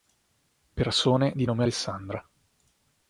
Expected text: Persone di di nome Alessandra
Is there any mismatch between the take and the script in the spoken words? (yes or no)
yes